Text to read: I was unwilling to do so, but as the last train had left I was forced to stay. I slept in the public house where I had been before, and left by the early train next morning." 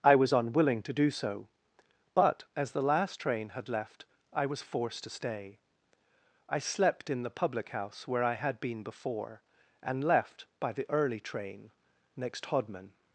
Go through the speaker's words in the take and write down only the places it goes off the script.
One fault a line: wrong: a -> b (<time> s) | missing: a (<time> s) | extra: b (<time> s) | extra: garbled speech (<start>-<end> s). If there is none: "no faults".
wrong: morning -> hodman (12.5 s)